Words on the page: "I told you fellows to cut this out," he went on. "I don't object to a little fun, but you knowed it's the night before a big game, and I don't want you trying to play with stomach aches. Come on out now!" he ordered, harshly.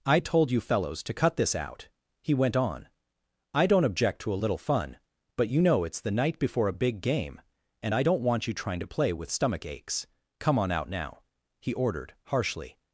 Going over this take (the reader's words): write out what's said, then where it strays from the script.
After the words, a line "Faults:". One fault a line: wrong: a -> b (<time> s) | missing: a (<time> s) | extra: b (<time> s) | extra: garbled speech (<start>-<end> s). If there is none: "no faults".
"I told you fellows to cut this out," he went on. "I don't object to a little fun, but you know it's the night before a big game, and I don't want you trying to play with stomach aches. Come on out now!" he ordered, harshly.
Faults:
wrong: knowed -> know (5.6 s)